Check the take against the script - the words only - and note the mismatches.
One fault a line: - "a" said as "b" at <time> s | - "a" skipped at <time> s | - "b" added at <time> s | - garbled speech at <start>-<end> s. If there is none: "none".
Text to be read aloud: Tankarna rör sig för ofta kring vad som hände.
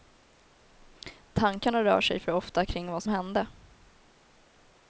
- "som" skipped at 3.0 s